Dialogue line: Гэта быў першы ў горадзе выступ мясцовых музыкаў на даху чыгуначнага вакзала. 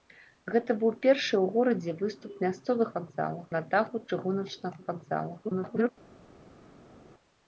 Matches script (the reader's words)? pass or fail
fail